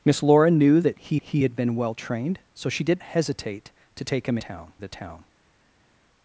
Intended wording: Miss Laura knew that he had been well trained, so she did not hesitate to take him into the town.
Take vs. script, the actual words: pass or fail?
fail